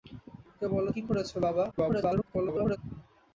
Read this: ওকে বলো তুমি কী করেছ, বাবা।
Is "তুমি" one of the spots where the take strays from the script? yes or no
yes